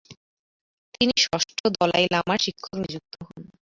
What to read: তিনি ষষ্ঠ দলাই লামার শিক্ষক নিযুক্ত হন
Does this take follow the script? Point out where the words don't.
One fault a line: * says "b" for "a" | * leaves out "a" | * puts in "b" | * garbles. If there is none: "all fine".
all fine